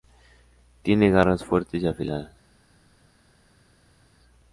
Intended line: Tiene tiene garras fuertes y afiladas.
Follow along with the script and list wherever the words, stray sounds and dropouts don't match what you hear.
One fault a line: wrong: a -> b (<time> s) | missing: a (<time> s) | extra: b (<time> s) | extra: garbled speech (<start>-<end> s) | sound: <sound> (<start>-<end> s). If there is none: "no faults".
missing: tiene (1.1 s)